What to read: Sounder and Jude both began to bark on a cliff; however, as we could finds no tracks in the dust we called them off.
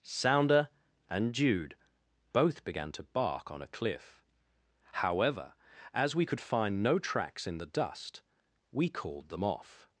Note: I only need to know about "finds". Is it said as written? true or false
false